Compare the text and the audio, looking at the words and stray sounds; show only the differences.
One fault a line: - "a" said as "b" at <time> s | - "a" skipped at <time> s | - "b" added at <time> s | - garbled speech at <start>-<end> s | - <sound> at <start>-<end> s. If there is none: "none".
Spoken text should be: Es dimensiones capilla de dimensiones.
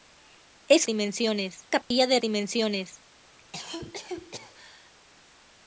- dropout at 1.8-1.9 s
- cough at 3.4-4.9 s